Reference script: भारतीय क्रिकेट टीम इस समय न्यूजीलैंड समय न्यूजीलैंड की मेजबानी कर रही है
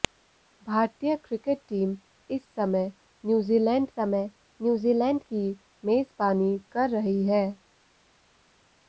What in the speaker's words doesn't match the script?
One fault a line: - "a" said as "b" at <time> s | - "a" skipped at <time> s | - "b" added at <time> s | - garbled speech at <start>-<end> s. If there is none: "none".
none